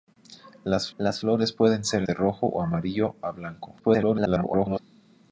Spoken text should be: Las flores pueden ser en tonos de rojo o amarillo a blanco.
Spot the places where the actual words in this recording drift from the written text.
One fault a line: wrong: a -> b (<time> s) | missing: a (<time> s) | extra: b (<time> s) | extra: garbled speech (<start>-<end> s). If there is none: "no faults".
extra: las (1.0 s)
missing: en tonos (2.0 s)
extra: garbled speech (3.8-4.8 s)